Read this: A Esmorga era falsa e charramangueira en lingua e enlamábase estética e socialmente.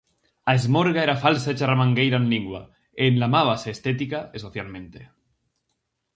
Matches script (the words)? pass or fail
pass